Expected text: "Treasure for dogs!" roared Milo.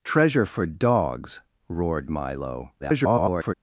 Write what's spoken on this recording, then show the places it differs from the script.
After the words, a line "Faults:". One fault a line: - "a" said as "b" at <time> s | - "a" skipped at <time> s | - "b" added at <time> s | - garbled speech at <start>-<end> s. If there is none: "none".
"Treasure for dogs!" roared Milo. [garbled]
Faults:
- garbled speech at 2.8-3.5 s